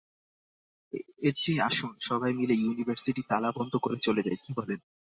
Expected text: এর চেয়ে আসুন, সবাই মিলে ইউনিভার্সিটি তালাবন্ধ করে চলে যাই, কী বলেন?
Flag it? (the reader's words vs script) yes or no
no